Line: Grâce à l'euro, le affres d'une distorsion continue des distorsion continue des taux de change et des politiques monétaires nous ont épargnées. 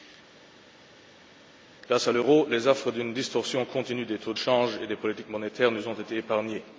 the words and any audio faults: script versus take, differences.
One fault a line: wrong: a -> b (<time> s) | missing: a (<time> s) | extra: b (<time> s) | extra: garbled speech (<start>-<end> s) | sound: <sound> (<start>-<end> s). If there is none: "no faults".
wrong: le -> les (2.5 s)
missing: distorsion continue des (4.2 s)
extra: été (5.9 s)